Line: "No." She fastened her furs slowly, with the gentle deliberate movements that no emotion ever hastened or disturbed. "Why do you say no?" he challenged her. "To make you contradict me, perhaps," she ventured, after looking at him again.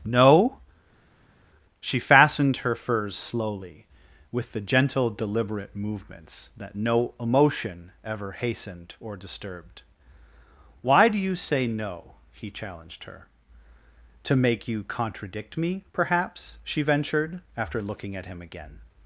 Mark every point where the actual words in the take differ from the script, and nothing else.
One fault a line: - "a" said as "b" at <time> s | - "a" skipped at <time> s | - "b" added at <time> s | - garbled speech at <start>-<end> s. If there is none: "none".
none